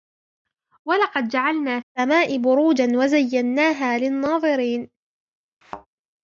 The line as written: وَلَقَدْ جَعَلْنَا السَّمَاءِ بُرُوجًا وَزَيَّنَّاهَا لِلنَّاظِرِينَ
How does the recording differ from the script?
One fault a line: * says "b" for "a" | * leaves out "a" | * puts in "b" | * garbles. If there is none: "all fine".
all fine